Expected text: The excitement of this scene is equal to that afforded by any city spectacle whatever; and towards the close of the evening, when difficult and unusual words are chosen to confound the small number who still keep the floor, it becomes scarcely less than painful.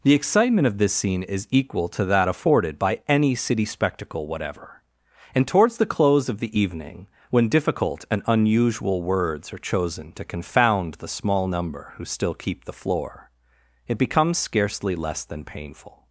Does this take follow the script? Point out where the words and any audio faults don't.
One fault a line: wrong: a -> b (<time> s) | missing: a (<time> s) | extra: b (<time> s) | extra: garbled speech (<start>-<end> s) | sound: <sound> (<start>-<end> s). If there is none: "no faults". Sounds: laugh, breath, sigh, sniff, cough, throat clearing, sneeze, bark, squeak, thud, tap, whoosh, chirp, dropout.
no faults